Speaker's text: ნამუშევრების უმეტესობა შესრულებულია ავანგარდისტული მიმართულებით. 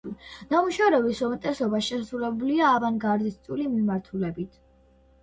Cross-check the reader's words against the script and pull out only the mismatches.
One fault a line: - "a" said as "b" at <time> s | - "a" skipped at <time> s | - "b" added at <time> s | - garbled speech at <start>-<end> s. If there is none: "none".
none